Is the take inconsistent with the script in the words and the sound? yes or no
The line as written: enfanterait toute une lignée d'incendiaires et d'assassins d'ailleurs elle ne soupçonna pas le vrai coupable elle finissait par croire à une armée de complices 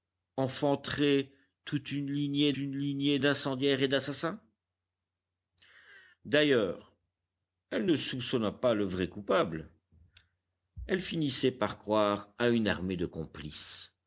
yes